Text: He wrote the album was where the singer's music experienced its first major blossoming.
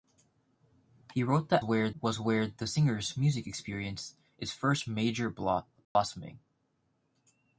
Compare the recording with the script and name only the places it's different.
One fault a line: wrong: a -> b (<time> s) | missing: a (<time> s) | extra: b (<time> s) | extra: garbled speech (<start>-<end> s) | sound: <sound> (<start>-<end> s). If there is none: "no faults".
wrong: album -> where (1.6 s)
sound: dropout (5.8-6.0 s)